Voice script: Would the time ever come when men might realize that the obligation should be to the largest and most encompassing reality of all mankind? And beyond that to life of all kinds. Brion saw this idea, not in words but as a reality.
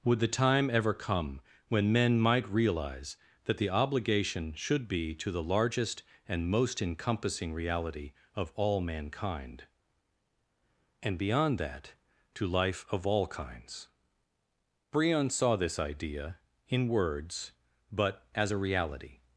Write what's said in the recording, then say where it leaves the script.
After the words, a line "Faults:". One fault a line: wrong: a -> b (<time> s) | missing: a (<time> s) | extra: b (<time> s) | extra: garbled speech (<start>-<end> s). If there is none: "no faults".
Would the time ever come when men might realize that the obligation should be to the largest and most encompassing reality of all mankind? And beyond that to life of all kinds. Brion saw this idea, in words but as a reality.
Faults:
missing: not (16.4 s)